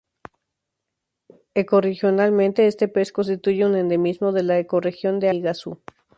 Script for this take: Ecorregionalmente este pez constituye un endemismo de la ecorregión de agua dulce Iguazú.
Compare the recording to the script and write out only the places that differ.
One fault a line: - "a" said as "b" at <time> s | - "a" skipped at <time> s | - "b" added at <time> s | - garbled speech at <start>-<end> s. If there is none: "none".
- "agua dulce" skipped at 5.3 s